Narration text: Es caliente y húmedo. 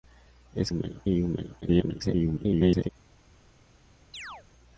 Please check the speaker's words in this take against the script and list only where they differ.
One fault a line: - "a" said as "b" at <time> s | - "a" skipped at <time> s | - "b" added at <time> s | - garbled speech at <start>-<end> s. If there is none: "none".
- "caliente" said as "húmedo" at 0.7 s
- garbled speech at 1.6-2.9 s